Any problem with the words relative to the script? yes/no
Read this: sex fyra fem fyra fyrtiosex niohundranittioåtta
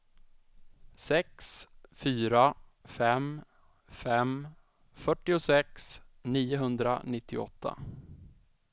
yes